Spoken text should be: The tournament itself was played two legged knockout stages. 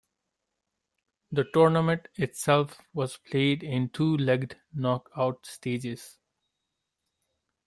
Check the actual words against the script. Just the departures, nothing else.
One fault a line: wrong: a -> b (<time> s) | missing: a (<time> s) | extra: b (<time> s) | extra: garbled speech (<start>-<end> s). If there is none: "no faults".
extra: in (3.6 s)